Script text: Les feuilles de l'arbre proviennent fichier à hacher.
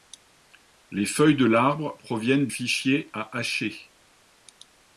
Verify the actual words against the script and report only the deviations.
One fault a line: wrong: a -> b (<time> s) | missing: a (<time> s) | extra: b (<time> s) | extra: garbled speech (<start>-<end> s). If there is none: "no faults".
no faults